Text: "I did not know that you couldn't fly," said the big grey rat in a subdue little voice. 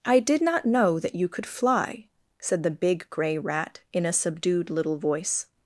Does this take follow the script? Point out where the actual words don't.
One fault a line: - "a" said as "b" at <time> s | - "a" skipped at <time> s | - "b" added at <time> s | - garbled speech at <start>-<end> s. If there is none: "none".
- "couldn't" said as "could" at 1.3 s
- "subdue" said as "subdued" at 4.1 s